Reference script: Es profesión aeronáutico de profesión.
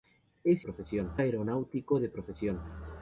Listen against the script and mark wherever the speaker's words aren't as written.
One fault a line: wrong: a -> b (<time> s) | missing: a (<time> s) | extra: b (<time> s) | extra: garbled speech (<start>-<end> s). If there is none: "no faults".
no faults